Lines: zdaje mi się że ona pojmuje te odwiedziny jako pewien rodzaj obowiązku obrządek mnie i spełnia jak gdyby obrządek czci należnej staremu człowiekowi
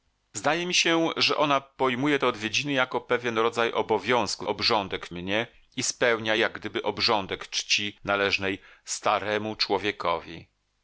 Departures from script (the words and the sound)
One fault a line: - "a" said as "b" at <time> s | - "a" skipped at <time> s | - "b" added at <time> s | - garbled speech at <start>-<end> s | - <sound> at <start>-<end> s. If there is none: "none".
none